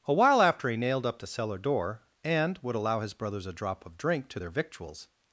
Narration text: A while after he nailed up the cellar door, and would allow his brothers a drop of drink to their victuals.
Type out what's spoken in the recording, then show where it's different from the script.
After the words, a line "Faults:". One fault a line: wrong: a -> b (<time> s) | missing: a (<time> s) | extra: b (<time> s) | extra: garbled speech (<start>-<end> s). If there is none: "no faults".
A while after he nailed up the cellar door, and would allow his brothers a drop of drink to their victuals.
Faults:
no faults